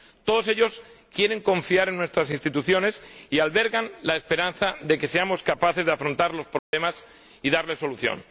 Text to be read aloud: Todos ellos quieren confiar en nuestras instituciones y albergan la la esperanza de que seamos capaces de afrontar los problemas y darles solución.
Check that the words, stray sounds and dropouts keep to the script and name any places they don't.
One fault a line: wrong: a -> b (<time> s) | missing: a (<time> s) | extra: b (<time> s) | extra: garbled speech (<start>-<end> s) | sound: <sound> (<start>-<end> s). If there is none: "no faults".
missing: la (4.2 s)
sound: dropout (6.6-6.7 s)